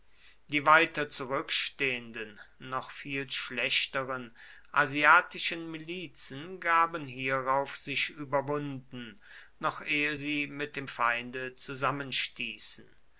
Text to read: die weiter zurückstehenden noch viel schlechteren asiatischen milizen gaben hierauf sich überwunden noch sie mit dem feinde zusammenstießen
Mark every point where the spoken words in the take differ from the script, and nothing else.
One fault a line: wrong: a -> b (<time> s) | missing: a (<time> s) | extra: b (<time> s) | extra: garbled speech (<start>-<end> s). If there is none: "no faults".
extra: ehe (9.8 s)